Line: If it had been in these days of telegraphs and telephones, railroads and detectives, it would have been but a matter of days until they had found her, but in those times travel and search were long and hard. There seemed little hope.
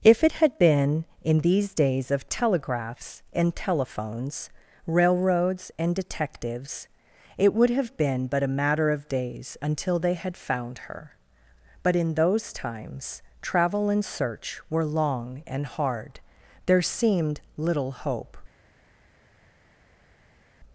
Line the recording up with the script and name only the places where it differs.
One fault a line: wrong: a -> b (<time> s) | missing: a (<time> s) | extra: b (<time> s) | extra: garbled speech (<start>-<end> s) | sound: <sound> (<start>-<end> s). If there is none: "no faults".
no faults